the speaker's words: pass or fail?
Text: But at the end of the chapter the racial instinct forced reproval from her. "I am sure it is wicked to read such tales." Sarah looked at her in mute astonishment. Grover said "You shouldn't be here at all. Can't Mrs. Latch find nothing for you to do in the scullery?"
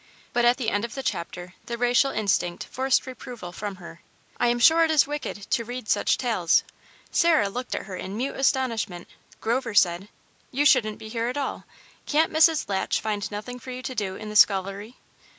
pass